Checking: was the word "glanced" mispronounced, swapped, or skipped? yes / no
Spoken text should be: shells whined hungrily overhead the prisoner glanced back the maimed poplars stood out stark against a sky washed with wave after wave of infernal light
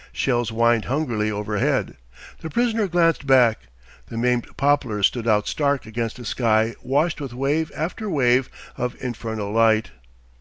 no